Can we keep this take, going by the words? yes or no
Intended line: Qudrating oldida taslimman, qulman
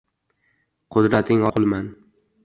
no